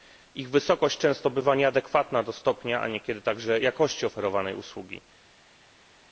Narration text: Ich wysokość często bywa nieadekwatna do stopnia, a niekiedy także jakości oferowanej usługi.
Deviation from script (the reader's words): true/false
false